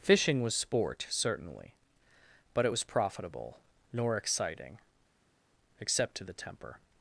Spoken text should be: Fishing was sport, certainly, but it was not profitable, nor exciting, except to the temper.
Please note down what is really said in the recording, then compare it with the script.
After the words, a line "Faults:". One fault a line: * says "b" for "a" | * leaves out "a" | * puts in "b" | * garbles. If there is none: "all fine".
Fishing was sport, certainly, but it was profitable, nor exciting, except to the temper.
Faults:
* leaves out "not"